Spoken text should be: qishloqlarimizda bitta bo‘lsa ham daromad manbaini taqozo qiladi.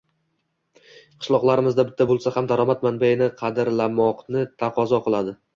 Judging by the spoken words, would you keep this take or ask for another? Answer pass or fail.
fail